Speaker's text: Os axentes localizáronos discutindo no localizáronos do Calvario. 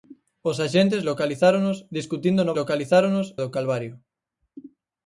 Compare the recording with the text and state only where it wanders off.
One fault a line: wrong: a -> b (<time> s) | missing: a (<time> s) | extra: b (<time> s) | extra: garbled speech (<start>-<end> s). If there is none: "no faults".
no faults